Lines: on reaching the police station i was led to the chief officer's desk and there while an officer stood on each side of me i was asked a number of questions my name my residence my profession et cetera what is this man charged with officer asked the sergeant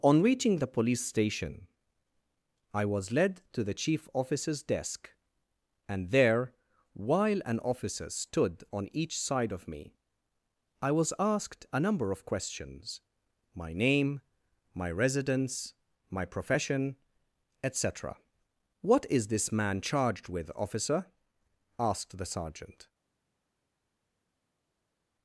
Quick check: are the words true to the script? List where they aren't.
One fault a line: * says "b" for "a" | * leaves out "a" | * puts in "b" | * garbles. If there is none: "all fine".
all fine